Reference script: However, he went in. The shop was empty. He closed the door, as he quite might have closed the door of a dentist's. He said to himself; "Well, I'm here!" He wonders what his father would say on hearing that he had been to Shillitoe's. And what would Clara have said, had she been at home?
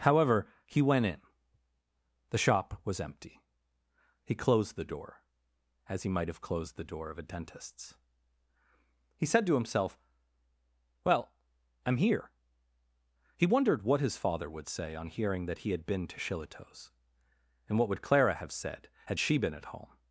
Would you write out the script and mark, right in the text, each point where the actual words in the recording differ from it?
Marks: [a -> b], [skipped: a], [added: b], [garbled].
However, he went in. The shop was empty. He closed the door, as he [skipped: quite] might have closed the door of a dentist's. He said to himself; "Well, I'm here!" He [wonders -> wondered] what his father would say on hearing that he had been to Shillitoe's. And what would Clara have said, had she been at home?